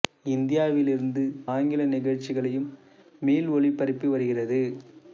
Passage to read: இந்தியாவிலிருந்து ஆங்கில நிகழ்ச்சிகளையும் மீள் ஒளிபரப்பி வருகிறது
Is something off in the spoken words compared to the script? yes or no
no